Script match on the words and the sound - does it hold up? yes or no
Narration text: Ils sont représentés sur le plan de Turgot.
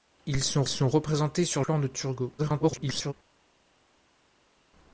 no